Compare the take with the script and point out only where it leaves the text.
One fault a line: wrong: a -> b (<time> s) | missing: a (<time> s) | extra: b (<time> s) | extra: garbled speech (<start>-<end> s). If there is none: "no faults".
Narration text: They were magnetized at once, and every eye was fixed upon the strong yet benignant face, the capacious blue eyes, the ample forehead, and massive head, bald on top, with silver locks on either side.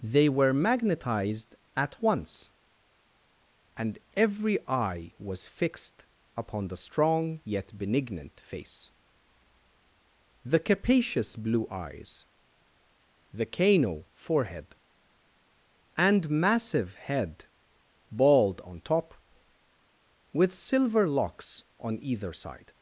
wrong: ample -> cano (13.5 s)